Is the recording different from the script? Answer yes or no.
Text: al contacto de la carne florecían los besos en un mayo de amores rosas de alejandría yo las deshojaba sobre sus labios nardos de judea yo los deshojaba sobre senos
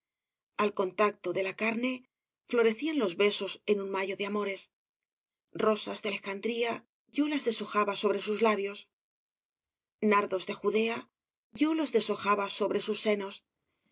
yes